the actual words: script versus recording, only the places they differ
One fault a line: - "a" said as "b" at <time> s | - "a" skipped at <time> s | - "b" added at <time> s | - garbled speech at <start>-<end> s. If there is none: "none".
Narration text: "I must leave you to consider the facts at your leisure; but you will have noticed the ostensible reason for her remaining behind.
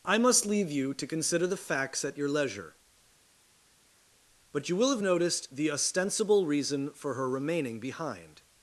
none